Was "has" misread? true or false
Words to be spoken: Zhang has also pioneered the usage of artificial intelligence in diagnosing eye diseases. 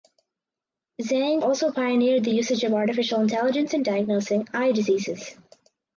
true